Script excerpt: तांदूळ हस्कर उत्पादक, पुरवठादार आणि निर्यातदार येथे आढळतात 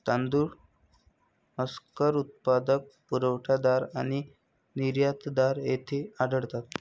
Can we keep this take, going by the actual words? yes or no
yes